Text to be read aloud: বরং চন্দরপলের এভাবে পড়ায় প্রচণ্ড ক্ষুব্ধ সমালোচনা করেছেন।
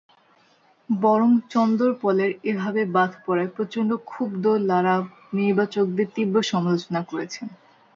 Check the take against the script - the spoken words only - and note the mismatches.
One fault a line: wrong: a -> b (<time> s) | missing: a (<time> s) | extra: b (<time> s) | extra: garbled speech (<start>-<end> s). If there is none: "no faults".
extra: বাদ (3.0 s)
extra: লারা নির্বাচকদের তীব্র (4.7 s)